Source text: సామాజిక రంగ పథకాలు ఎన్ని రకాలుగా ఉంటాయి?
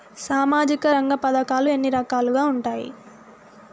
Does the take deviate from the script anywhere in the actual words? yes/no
no